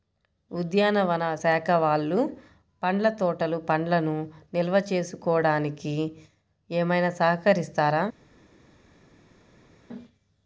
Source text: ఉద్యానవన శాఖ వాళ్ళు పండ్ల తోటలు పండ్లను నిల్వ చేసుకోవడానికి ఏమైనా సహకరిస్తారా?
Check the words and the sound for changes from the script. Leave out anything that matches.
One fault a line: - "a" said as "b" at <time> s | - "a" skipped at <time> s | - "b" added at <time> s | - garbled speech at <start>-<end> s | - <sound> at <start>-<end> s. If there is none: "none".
none